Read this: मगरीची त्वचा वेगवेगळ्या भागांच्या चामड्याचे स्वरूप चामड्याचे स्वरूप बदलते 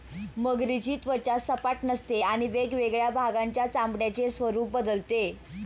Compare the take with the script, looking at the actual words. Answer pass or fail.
fail